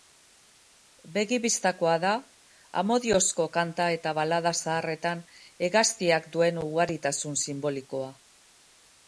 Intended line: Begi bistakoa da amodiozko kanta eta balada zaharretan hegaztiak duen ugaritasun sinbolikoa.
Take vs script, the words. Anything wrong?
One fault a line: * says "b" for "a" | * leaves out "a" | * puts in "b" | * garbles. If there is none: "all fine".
all fine